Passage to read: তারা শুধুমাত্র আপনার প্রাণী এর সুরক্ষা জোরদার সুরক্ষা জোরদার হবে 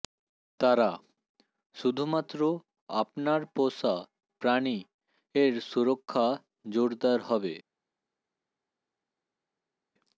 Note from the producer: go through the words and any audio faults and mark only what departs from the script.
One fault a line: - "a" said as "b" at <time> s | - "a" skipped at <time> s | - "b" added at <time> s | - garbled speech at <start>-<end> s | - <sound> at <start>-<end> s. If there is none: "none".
- "পোষা" added at 3.6 s
- "সুরক্ষা জোরদার" skipped at 7.2 s